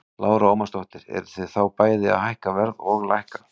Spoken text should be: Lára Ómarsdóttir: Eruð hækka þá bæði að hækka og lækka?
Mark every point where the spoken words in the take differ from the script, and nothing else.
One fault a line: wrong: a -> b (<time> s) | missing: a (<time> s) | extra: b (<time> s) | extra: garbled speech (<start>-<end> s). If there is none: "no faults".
wrong: hækka -> þið (1.3 s)
extra: verð (2.6 s)